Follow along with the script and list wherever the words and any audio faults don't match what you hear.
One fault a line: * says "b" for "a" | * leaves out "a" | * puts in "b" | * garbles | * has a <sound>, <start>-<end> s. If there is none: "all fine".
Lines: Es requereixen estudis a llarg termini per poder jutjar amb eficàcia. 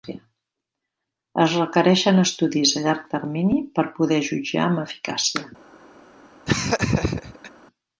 * has a laugh, 6.5-7.5 s